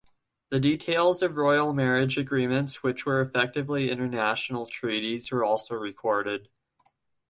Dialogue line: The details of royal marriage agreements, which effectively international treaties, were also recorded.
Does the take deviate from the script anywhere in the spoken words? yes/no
yes